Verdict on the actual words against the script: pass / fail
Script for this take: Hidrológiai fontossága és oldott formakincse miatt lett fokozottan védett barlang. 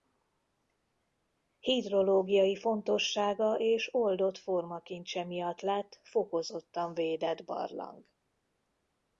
pass